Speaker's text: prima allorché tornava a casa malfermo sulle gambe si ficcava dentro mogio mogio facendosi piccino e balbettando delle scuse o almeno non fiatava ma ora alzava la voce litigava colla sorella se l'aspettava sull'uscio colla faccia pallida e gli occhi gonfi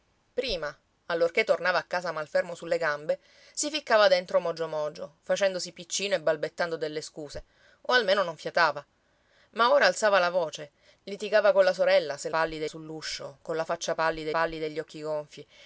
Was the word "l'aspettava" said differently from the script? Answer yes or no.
yes